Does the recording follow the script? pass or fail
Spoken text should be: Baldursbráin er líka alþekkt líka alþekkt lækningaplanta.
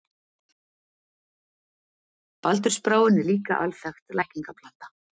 fail